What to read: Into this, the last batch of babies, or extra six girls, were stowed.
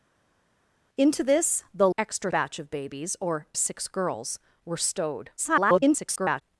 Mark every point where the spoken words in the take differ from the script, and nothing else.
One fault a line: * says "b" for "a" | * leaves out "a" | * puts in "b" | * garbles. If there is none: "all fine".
* says "extra" for "last"
* leaves out "extra"
* garbles